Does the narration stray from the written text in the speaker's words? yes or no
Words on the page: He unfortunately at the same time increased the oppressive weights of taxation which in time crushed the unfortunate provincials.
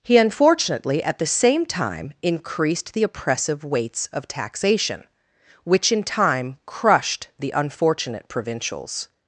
no